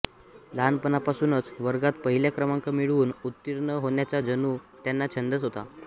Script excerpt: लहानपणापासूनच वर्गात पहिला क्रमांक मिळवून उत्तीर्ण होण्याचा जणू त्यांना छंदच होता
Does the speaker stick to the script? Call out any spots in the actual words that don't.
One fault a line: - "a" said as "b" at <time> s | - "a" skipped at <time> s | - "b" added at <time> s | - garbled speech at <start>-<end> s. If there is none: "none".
none